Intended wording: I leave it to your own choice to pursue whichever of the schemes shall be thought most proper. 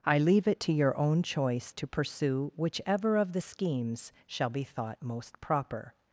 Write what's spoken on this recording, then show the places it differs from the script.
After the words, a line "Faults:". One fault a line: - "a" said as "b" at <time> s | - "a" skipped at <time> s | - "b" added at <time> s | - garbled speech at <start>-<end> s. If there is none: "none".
I leave it to your own choice to pursue whichever of the schemes shall be thought most proper.
Faults:
none